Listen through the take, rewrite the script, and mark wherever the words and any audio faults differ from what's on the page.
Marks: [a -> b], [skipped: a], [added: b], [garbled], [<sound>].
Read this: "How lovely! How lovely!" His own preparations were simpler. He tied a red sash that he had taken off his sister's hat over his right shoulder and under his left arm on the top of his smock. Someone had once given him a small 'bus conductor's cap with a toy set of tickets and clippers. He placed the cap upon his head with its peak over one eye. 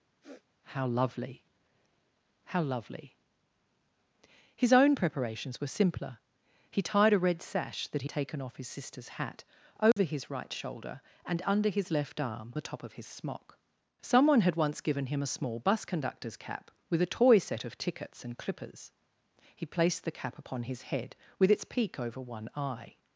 [sniff] "How lovely! How lovely!" His own preparations were simpler. He tied a red sash that he [skipped: had] taken off his sister's hat over [dropout] his right shoulder and under his left arm [skipped: on] the top of his smock. Someone had once given him a small 'bus conductor's cap with a toy set of tickets and clippers. He placed the cap upon his head with its peak over one eye.